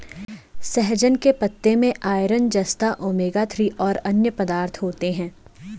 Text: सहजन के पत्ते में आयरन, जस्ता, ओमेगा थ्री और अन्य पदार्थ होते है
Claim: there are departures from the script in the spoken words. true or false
false